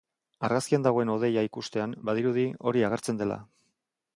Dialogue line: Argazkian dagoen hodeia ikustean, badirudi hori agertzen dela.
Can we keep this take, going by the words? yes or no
yes